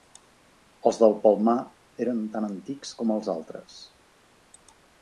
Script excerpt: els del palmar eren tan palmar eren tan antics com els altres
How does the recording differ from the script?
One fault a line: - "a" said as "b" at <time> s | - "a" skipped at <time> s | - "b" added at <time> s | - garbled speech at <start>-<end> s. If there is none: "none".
- "palmar eren tan" skipped at 2.5 s